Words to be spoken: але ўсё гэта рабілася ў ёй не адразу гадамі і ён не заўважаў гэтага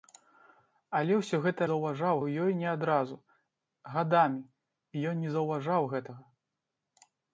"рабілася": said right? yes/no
no